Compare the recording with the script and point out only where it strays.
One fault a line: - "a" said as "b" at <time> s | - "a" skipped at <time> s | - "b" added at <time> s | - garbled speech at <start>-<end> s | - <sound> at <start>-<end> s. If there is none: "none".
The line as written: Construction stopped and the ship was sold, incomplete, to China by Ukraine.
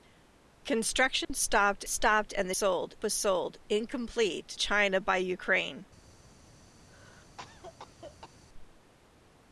- dropout at 1.2-1.3 s
- "stopped" added at 1.9 s
- "ship" said as "sold" at 2.5 s
- "to" skipped at 4.5 s
- cough at 6.9-8.4 s